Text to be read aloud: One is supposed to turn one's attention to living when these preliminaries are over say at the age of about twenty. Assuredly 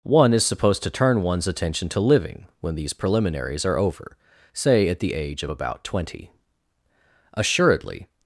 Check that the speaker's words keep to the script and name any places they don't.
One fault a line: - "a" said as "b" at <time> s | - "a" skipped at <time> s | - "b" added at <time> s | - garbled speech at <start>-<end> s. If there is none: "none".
none